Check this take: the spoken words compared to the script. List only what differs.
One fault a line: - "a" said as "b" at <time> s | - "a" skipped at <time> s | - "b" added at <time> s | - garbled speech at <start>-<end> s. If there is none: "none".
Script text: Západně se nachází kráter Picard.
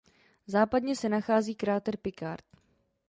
none